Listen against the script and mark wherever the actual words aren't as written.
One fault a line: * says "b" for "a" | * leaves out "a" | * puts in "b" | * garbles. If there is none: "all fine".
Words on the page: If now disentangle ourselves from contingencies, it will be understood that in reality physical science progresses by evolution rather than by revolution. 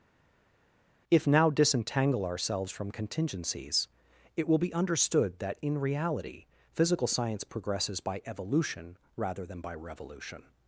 all fine